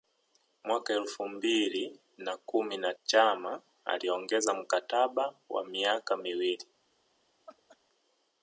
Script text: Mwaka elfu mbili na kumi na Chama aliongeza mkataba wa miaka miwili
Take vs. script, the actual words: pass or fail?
pass